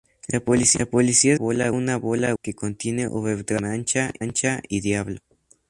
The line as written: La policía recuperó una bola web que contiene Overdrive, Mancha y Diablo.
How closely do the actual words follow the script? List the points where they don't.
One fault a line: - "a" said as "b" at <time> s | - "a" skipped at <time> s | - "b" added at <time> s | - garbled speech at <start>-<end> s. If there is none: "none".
- "recuperó" said as "bola" at 1.3 s
- "web" skipped at 2.3 s